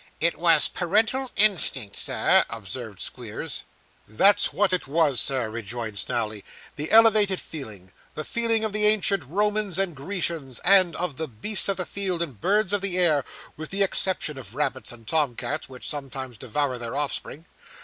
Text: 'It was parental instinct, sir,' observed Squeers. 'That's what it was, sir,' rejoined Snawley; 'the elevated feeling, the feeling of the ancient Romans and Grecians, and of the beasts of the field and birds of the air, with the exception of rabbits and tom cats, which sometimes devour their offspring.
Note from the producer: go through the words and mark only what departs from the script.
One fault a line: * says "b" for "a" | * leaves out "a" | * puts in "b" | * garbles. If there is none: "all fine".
all fine